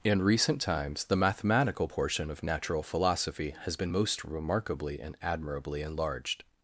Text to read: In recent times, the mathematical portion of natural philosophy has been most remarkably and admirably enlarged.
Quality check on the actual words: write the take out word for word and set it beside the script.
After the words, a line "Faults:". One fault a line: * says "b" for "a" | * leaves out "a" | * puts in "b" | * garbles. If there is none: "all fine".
In recent times, the mathematical portion of natural philosophy has been most remarkably and admirably enlarged.
Faults:
all fine